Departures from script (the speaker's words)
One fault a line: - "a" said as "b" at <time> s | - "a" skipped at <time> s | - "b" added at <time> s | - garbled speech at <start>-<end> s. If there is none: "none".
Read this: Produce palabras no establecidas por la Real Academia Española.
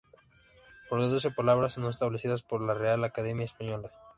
none